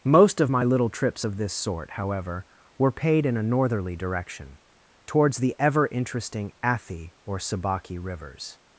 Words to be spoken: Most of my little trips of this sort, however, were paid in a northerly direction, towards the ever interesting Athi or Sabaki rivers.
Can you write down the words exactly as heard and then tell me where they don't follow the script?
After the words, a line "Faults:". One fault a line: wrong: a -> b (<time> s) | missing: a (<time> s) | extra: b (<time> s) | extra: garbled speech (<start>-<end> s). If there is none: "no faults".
Most of my little trips of this sort, however, were paid in a northerly direction, towards the ever interesting Athi or Sabaki rivers.
Faults:
no faults